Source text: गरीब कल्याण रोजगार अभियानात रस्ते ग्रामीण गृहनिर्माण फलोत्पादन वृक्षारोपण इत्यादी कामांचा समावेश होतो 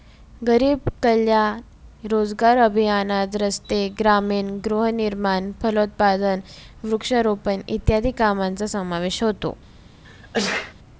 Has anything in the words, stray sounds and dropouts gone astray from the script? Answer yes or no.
yes